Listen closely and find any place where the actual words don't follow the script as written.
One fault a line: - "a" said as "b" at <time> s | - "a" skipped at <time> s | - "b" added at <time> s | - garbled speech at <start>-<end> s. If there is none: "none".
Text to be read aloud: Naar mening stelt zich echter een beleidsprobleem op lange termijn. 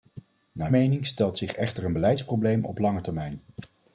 none